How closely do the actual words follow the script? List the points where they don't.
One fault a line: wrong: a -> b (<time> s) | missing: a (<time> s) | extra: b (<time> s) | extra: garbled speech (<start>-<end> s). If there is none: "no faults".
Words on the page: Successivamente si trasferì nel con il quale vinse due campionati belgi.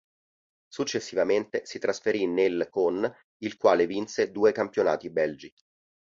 no faults